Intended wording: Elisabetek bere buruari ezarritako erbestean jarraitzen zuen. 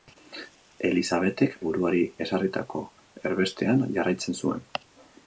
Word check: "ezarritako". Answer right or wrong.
right